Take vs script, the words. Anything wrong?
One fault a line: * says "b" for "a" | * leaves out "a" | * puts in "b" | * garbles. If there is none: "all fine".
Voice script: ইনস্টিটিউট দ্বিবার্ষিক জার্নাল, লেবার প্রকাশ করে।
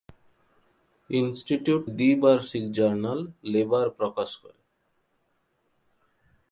all fine